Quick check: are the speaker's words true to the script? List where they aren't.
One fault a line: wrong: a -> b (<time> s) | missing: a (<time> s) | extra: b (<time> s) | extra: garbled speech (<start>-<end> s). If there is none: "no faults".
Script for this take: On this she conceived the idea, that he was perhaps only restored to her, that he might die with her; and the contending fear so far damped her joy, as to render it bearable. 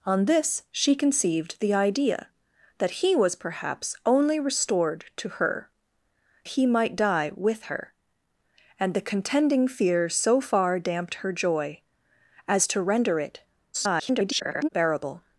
missing: that (5.7 s)
extra: garbled speech (13.7-14.7 s)